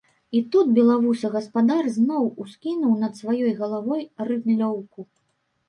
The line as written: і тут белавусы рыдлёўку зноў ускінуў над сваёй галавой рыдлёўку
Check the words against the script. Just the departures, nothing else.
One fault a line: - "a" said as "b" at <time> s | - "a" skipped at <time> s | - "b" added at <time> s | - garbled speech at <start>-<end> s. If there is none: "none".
- "рыдлёўку" said as "гаспадар" at 1.4 s